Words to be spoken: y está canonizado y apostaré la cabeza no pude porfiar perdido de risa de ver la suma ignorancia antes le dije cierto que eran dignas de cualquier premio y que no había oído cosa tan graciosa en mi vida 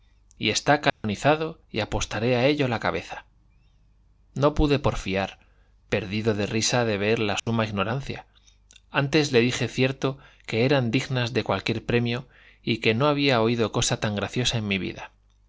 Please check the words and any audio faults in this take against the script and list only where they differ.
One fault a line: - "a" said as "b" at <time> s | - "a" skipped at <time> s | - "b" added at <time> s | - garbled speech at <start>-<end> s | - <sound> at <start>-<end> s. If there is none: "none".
- dropout at 0.9-1.0 s
- "a ello" added at 2.4 s
- dropout at 7.4-7.5 s